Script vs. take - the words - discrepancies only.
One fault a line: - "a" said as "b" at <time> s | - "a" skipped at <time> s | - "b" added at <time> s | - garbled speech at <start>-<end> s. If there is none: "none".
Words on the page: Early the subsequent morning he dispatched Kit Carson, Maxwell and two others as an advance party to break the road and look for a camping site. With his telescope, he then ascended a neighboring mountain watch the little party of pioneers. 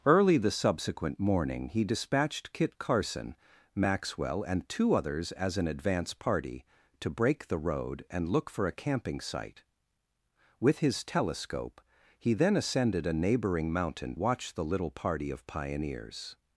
none